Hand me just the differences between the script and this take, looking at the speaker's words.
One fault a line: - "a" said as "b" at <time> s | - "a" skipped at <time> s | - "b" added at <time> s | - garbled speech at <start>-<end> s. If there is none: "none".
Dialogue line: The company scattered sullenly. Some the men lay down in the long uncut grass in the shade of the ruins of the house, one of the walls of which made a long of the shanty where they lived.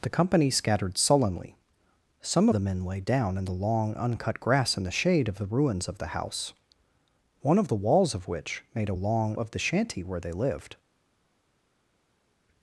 none